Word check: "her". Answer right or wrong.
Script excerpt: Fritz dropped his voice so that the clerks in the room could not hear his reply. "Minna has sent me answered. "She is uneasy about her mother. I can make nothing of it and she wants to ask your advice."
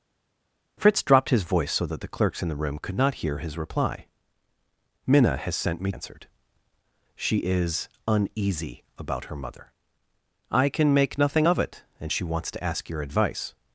right